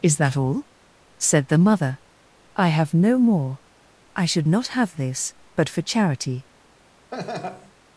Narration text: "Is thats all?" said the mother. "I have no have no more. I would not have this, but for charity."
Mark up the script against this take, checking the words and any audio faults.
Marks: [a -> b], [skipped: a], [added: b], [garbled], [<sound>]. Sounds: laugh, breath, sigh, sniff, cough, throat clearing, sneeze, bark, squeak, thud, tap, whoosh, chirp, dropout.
"Is [thats -> that] all?" said the mother. "I have no [skipped: have no] more. I [would -> should] not have this, but for charity." [laugh]